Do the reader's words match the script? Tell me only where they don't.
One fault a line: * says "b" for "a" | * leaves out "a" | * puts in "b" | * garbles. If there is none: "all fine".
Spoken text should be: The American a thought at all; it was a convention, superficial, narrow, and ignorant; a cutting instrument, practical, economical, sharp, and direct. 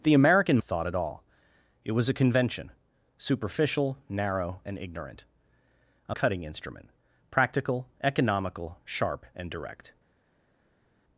all fine